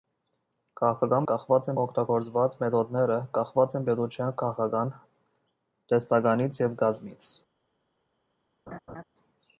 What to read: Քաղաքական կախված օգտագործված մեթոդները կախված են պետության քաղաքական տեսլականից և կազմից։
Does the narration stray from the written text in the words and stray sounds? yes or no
yes